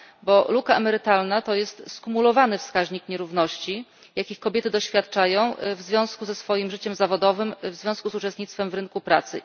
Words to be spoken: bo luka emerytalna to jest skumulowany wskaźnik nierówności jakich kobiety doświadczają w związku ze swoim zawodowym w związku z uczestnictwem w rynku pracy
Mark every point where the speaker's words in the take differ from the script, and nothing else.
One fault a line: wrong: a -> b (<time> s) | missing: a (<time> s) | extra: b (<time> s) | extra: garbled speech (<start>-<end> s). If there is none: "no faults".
extra: życiem (6.7 s)